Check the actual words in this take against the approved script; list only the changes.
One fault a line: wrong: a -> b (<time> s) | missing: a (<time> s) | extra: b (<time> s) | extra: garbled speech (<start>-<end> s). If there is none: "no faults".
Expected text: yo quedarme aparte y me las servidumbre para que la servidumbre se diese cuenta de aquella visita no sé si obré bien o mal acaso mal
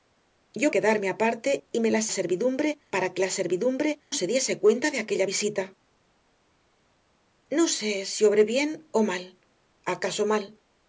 no faults